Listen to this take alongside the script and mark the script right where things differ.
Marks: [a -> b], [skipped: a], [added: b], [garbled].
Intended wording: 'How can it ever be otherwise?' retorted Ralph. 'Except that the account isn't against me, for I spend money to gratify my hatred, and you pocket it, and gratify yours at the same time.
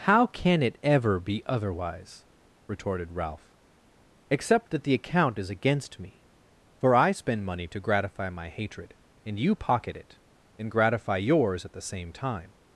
'How can it ever be otherwise?' retorted Ralph. 'Except that the account [isn't -> is] against me, for I spend money to gratify my hatred, and you pocket it, and gratify yours at the same time.